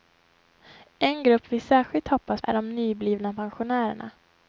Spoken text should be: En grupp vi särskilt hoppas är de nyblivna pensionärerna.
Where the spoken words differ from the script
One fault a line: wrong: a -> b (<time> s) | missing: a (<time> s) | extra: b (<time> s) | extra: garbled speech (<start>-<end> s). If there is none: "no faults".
no faults